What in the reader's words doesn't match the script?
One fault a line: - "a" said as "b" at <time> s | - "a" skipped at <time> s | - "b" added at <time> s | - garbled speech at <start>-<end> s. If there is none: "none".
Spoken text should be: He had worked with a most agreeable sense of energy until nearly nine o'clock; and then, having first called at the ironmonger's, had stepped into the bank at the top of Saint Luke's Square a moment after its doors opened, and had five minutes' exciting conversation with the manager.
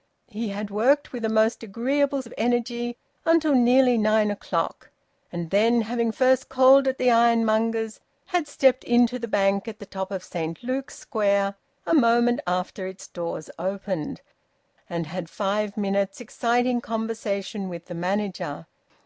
- "sense" skipped at 2.2 s